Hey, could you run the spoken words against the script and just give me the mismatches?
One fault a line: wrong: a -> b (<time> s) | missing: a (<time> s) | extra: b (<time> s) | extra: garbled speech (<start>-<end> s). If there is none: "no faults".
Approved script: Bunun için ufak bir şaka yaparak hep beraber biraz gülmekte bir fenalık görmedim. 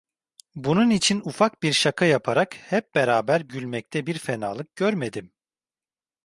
missing: biraz (3.5 s)